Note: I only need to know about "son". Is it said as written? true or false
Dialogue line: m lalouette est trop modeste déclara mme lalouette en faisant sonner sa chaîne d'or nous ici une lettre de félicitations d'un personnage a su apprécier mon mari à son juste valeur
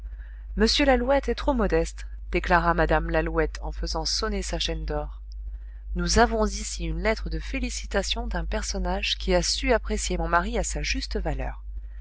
false